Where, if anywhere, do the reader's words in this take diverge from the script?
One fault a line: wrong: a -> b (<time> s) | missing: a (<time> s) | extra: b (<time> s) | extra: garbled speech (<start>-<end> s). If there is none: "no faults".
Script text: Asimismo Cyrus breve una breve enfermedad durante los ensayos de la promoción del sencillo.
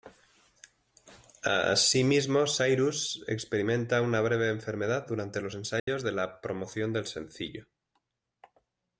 wrong: breve -> experimenta (3.3 s)